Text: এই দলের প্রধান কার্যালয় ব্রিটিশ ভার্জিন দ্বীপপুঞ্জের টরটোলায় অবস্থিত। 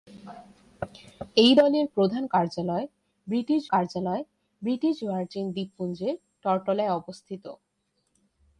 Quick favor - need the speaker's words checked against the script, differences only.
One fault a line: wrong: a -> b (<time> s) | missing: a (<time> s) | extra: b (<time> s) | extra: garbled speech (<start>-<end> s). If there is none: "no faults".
extra: কার্যালয় ব্রিটিশ (3.7 s)